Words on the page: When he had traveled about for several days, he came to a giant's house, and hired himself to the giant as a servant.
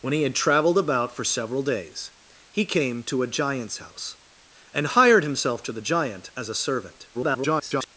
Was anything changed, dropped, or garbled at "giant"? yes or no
no